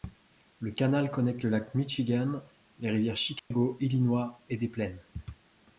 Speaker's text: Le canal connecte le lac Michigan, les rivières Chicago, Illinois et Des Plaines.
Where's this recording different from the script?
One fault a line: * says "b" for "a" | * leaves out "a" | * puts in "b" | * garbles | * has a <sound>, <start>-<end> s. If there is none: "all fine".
* has a dropout, 3.4-3.5 s